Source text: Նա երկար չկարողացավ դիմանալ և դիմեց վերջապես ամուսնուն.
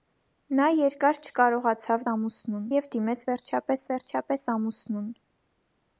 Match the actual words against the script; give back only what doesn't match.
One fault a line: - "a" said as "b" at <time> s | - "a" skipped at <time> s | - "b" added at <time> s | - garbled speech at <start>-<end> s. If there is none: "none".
- "դիմանալ" said as "ամուսնուն" at 2.1 s
- "վերջապես" added at 3.9 s